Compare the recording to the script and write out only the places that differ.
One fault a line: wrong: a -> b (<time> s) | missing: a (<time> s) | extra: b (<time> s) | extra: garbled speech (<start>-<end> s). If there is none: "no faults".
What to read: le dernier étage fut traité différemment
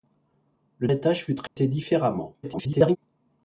missing: dernier (0.9 s)
extra: garbled speech (2.4-3.0 s)